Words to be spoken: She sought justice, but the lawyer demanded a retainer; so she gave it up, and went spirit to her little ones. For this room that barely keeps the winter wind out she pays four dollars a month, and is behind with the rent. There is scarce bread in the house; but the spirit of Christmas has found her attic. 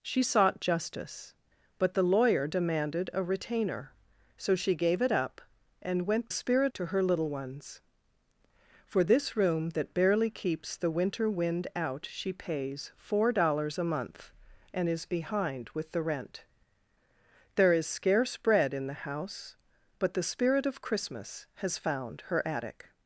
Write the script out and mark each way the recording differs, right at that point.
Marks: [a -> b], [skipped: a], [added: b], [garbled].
She sought justice, but the lawyer demanded a retainer; so she gave it up, and went spirit to her little ones. For this room that barely keeps the winter wind out she pays four dollars a month, and is behind with the rent. There is scarce bread in the house; but the spirit of Christmas has found her attic.